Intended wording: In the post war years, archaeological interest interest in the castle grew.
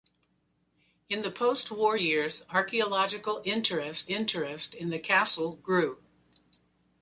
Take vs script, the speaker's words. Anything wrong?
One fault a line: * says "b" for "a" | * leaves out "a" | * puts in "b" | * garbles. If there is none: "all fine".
all fine